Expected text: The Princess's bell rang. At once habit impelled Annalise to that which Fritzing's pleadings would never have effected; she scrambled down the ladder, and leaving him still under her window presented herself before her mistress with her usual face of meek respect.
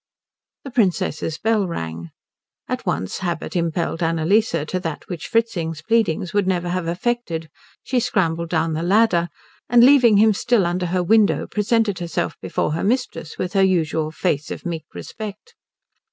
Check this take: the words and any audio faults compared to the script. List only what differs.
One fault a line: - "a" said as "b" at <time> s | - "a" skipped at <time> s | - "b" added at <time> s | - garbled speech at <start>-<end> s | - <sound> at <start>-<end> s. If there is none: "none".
none